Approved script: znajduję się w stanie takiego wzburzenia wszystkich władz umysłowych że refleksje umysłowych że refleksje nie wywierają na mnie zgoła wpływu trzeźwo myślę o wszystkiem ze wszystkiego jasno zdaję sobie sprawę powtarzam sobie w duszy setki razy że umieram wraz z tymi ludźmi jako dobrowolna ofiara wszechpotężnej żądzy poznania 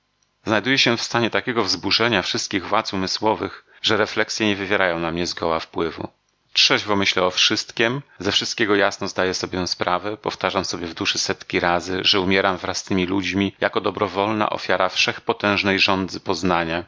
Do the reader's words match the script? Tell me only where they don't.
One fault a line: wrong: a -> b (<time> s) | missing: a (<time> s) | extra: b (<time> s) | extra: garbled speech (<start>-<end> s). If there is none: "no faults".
missing: umysłowych że refleksje (4.5 s)